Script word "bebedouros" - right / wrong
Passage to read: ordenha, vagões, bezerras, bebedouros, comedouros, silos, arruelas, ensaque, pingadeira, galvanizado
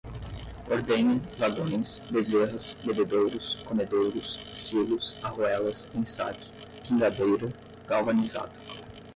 right